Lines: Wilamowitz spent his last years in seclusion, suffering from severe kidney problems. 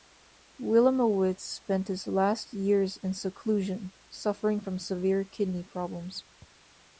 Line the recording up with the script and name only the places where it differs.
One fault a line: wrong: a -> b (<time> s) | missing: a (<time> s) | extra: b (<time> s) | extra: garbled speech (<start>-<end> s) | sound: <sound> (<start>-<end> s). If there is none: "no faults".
no faults